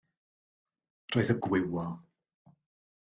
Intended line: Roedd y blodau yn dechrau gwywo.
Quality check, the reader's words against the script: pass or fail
fail